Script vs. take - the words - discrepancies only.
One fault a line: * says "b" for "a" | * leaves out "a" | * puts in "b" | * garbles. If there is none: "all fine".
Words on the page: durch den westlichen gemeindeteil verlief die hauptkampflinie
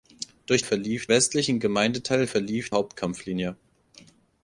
* says "verlief" for "den"
* leaves out "die"